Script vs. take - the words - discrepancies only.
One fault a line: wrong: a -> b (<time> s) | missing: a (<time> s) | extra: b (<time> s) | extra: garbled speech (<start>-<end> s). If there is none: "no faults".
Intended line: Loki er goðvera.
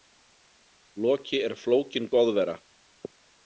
extra: flókin (1.7 s)